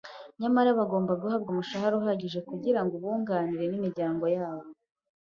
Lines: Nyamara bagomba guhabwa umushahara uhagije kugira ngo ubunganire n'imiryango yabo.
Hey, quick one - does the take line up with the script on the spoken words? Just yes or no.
yes